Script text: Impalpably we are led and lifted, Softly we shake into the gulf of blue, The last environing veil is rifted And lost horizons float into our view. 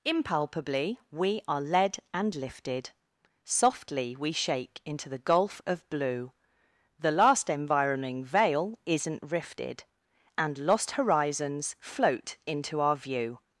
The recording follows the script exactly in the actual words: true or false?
false